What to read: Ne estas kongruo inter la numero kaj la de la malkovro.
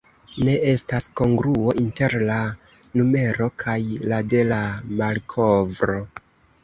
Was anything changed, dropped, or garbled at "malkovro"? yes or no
no